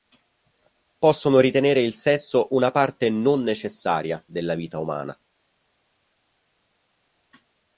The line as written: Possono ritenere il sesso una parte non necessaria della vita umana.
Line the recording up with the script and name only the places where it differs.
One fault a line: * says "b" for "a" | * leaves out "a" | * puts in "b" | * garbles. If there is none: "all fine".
all fine